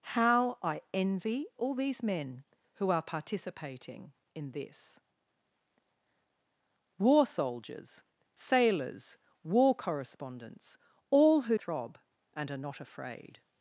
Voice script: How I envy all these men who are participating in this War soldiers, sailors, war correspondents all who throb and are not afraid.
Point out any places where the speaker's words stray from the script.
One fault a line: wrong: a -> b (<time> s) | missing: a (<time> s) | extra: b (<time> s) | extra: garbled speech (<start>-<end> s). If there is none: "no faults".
no faults